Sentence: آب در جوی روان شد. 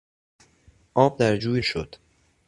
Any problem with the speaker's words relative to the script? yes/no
yes